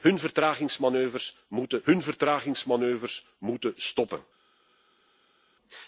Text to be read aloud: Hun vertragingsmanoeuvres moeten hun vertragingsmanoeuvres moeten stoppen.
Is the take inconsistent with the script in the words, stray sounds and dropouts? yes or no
no